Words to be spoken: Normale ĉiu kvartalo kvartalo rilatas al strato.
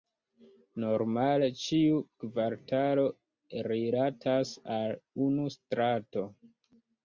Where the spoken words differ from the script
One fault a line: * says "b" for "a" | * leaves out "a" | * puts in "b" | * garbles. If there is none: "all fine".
* leaves out "kvartalo"
* puts in "unu"